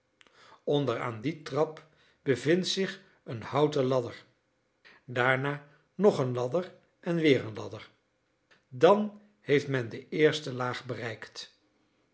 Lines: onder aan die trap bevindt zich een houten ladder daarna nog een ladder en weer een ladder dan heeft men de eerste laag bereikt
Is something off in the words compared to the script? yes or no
no